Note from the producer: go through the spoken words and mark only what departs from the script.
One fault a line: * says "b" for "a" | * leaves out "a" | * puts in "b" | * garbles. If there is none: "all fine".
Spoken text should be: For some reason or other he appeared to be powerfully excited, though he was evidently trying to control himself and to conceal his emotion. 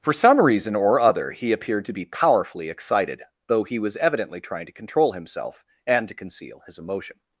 all fine